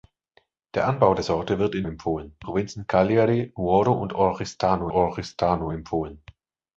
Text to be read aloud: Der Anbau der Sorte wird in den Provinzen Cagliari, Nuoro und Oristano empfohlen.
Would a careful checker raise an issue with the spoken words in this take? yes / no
yes